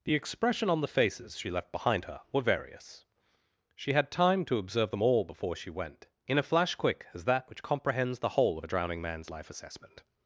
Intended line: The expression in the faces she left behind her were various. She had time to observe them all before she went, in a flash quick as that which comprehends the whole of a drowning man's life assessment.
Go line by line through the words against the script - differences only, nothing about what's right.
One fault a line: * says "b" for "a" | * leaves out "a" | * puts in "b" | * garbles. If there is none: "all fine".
* says "on" for "in"